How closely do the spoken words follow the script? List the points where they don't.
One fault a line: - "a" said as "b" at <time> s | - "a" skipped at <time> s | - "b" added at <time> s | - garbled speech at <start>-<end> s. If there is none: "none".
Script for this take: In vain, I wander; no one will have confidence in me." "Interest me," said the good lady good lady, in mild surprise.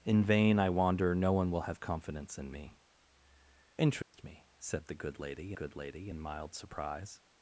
none